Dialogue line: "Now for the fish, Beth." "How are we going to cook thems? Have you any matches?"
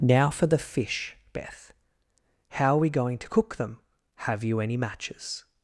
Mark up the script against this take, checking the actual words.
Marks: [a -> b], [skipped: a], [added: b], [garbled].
"Now for the fish, Beth." "How are we going to cook [thems? -> them] Have you any matches?"